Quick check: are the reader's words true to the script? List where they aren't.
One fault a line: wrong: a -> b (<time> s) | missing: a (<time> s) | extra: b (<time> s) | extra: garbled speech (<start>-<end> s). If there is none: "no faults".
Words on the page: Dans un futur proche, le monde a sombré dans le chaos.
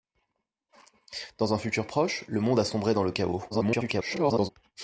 extra: garbled speech (3.5-4.5 s)